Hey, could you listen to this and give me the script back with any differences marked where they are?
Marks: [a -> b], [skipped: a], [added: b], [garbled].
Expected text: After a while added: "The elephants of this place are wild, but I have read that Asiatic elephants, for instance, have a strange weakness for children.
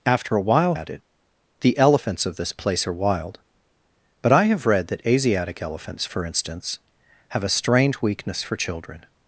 After a while added: "The elephants of this place are wild, but I have read that Asiatic elephants, for instance, have a strange weakness for children.